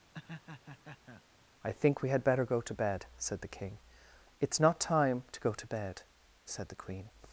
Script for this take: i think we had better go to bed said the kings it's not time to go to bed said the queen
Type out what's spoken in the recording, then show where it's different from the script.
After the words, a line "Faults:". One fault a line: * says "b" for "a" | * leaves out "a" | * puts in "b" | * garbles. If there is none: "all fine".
i think we had better go to bed said the king it's not time to go to bed said the queen
Faults:
* says "king" for "kings"